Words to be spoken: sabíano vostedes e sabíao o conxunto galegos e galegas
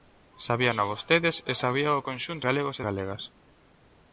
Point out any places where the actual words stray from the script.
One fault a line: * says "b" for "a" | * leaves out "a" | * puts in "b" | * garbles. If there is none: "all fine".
all fine